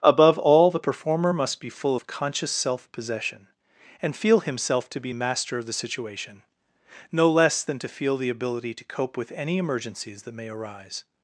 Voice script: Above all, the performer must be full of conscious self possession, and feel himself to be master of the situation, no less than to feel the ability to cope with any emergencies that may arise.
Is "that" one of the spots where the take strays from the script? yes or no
no